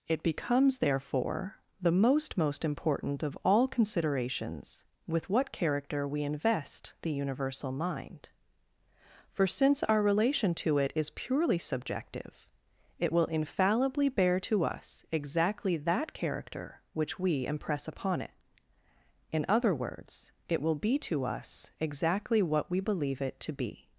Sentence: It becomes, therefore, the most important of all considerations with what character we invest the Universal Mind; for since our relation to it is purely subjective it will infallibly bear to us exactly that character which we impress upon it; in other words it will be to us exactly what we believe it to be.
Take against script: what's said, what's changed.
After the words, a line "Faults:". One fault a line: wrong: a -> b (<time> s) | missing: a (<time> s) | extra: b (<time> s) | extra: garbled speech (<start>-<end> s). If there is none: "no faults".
It becomes, therefore, the most most important of all considerations with what character we invest the Universal Mind; for since our relation to it is purely subjective it will infallibly bear to us exactly that character which we impress upon it; in other words it will be to us exactly what we believe it to be.
Faults:
extra: most (2.4 s)